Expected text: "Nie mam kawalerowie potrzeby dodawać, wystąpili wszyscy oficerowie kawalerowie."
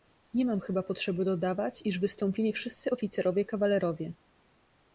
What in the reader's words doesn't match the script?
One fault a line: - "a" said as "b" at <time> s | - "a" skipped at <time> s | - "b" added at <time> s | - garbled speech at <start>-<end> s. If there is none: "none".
- "kawalerowie" said as "chyba" at 0.6 s
- "iż" added at 1.9 s